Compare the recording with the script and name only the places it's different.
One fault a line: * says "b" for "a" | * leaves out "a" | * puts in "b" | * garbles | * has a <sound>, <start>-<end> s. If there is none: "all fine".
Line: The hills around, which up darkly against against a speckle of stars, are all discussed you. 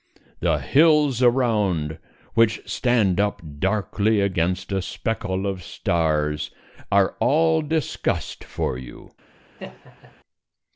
* puts in "stand"
* leaves out "against"
* puts in "for"
* has a laugh, 9.6-10.2 s